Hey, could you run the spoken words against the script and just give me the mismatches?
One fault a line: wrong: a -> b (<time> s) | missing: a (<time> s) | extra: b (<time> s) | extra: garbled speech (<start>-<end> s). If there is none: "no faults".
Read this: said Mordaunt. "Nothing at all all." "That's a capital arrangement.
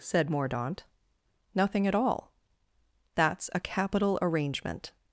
missing: all (2.3 s)